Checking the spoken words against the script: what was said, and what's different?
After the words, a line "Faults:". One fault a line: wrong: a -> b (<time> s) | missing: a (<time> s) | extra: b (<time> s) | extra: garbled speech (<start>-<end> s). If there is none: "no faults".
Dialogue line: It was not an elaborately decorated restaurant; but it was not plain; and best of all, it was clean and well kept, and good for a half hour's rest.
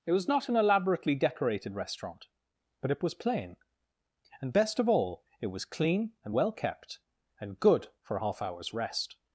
It was not an elaborately decorated restaurant; but it was plain; and best of all, it was clean and well kept, and good for a half hour's rest.
Faults:
missing: not (3.1 s)